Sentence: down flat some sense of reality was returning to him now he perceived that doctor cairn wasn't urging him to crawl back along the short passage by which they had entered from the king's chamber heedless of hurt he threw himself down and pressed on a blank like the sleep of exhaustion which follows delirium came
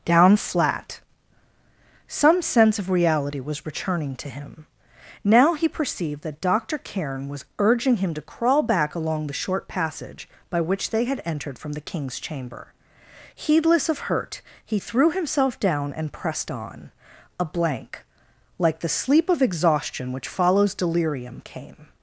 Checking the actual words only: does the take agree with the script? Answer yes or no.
no